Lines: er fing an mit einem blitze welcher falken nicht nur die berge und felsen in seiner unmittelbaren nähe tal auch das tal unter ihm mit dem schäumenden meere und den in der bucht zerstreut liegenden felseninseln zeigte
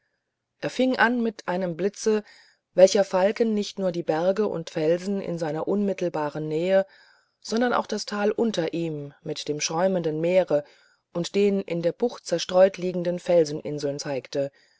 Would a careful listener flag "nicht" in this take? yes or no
no